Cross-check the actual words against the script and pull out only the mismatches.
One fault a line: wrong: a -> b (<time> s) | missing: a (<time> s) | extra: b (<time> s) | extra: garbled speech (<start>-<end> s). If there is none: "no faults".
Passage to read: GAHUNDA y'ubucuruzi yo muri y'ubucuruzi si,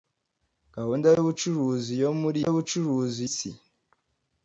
no faults